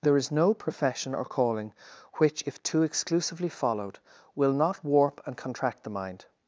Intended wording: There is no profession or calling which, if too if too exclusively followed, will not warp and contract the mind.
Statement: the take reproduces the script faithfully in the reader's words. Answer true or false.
false